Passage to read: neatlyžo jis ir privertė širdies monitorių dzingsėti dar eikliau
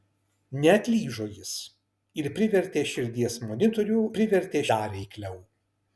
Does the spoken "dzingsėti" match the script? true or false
false